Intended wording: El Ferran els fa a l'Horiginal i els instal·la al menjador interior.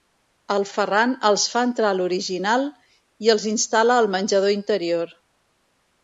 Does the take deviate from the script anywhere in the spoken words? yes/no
yes